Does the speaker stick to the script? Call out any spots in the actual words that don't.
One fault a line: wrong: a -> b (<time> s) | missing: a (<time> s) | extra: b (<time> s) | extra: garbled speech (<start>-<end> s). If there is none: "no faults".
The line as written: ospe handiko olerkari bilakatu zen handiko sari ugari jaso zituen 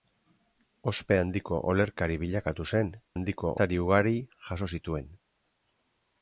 no faults